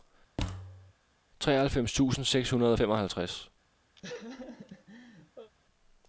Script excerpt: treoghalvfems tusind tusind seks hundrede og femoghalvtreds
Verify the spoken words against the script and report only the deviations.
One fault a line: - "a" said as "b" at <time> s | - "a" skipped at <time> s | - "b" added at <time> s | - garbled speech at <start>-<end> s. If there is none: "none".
- "tusind" skipped at 2.2 s